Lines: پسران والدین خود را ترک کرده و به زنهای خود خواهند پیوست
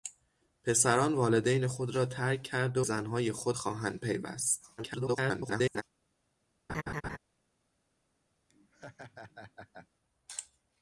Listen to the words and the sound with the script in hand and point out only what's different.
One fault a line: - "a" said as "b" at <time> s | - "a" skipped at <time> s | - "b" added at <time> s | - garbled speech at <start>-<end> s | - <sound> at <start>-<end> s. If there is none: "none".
- "و به" skipped at 2.8 s
- garbled speech at 4.8-5.8 s
- laugh at 6.7-7.2 s
- laugh at 8.5-9.9 s